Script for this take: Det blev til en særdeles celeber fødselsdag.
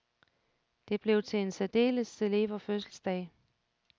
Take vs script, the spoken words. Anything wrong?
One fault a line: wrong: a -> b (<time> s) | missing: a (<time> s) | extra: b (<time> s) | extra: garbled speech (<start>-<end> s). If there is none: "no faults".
no faults